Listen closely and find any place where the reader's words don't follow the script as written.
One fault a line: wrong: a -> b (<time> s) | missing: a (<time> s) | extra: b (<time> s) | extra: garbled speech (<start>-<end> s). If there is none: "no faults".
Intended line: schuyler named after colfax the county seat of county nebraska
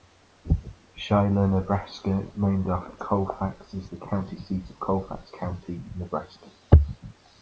extra: nebraska (1.5 s)
extra: is (3.7 s)
extra: colfax (4.8 s)